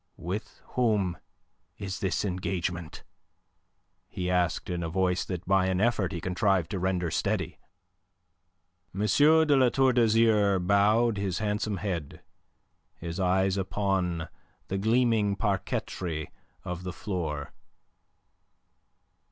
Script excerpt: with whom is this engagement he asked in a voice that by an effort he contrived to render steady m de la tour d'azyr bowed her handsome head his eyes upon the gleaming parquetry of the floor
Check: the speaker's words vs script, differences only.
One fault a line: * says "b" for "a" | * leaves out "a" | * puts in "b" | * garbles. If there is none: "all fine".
* says "his" for "her"